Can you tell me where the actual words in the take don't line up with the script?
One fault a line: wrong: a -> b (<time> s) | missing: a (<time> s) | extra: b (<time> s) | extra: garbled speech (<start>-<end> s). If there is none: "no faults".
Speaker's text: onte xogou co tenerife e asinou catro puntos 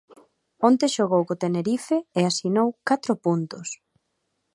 no faults